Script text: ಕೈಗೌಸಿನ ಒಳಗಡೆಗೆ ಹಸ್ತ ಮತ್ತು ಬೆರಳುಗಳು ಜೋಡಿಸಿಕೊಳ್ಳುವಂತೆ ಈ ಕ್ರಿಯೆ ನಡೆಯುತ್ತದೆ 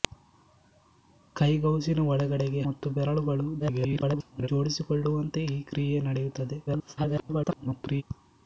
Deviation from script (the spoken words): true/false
true